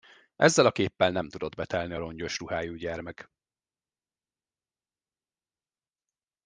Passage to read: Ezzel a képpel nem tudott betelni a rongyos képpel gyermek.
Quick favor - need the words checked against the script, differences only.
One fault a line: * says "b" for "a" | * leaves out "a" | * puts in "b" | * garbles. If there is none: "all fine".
* says "ruhájú" for "képpel"